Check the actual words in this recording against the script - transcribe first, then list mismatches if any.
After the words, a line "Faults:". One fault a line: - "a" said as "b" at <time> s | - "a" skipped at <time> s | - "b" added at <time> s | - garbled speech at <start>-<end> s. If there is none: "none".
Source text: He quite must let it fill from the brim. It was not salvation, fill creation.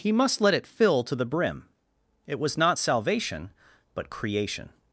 He must let it fill to the brim. It was not salvation, but creation.
Faults:
- "quite" skipped at 0.1 s
- "from" said as "to" at 1.0 s
- "fill" said as "but" at 3.9 s